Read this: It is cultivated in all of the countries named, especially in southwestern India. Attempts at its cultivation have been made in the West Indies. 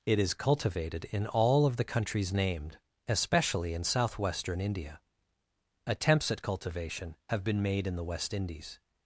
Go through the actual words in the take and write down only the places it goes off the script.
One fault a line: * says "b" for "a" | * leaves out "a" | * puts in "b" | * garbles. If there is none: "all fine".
* leaves out "its"